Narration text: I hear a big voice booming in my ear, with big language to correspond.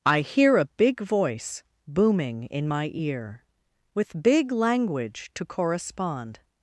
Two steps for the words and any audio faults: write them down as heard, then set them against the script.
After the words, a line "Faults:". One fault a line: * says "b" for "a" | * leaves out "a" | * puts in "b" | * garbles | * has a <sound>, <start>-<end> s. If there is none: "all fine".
I hear a big voice booming in my ear, with big language to correspond.
Faults:
all fine